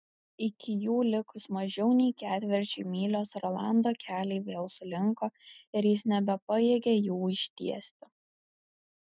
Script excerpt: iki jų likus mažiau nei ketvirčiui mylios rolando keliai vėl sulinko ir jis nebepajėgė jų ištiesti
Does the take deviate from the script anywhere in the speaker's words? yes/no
no